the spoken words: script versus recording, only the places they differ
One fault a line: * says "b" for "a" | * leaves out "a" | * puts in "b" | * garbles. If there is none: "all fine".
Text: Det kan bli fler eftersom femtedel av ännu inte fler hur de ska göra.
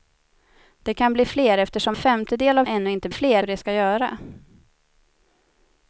all fine